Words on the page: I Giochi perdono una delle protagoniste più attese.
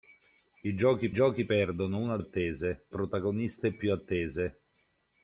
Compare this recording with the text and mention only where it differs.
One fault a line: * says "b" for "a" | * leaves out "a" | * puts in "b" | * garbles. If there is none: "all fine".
* puts in "Giochi"
* says "attese" for "delle"